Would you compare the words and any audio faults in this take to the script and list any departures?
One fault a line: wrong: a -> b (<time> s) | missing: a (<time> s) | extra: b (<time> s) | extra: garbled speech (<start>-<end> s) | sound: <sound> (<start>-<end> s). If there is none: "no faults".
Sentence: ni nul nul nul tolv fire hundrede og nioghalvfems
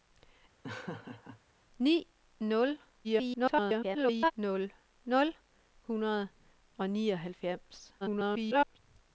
sound: laugh (0.6-1.4 s)
extra: garbled speech (3.0-4.3 s)
missing: tolv fire (5.3 s)
extra: garbled speech (8.0-8.8 s)